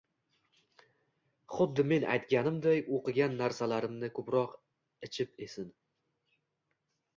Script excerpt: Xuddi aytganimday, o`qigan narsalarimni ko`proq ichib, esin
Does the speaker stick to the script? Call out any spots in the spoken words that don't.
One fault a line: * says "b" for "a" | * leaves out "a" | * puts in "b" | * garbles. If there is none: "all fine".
* puts in "men"